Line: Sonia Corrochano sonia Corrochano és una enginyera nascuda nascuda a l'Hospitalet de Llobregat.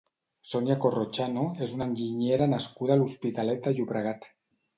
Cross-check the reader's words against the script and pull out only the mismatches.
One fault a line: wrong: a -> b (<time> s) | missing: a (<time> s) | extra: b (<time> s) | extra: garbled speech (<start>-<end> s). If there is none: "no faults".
missing: sonia Corrochano (1.4 s)
missing: nascuda (3.0 s)